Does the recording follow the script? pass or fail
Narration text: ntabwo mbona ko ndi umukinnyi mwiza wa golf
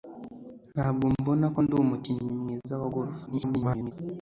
fail